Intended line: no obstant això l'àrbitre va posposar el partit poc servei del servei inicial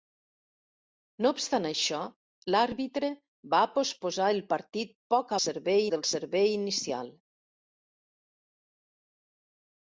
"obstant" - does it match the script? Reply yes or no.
yes